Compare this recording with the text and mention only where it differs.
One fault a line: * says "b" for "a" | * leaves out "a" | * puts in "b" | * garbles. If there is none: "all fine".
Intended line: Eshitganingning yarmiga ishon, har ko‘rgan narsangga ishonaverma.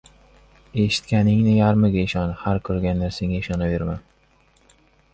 all fine